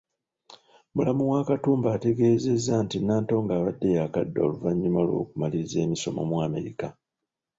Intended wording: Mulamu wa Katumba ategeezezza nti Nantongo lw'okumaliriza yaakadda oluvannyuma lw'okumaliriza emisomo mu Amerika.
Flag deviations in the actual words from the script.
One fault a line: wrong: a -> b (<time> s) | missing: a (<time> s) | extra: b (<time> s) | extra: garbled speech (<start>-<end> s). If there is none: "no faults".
wrong: lw'okumaliriza -> abadde (3.5 s)